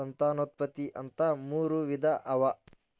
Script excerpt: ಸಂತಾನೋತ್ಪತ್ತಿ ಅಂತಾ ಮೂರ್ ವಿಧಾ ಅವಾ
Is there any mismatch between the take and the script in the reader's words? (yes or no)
no